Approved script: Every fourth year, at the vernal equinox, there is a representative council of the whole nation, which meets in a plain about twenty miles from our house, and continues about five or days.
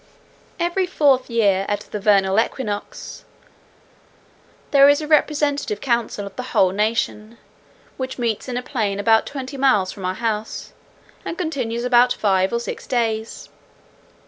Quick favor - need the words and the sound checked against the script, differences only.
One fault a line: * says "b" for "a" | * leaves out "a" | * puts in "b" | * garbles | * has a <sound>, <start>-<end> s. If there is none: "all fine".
* puts in "six"